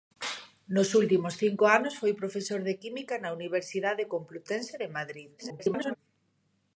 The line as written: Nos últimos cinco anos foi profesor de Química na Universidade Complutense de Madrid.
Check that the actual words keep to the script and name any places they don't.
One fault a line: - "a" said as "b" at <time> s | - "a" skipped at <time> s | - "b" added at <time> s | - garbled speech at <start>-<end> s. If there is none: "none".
- garbled speech at 5.4-6.0 s